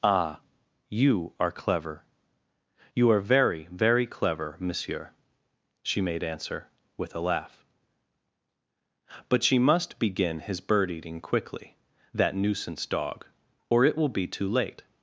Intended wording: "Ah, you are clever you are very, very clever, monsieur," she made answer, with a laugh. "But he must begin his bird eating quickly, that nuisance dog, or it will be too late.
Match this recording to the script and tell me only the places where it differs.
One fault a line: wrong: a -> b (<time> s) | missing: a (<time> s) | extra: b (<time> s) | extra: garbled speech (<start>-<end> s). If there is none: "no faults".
wrong: he -> she (9.4 s)